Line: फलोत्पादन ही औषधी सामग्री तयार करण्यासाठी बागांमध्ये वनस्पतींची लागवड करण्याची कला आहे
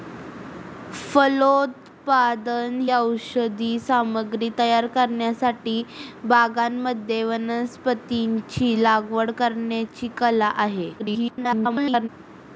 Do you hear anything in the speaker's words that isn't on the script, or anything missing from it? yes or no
yes